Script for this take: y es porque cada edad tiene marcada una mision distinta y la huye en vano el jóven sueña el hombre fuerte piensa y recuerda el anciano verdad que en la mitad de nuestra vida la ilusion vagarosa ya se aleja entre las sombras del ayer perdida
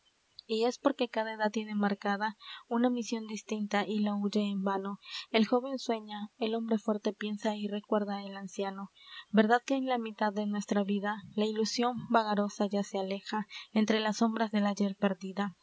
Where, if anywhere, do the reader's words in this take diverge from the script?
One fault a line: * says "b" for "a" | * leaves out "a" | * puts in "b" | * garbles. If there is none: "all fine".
all fine